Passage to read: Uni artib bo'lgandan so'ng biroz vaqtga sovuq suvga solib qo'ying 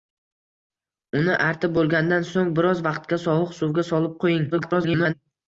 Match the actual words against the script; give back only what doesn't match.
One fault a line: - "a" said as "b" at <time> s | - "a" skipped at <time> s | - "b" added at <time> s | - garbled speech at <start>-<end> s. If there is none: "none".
- garbled speech at 4.5-5.1 s